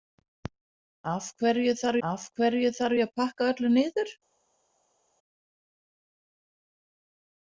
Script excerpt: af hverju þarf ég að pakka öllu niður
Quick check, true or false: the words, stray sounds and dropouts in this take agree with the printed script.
false